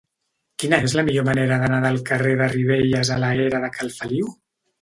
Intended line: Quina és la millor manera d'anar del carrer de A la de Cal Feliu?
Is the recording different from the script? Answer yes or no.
yes